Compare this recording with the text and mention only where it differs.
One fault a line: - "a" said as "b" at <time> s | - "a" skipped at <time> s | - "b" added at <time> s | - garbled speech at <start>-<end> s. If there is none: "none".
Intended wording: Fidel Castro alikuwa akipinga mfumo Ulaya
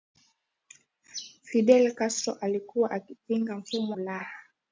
none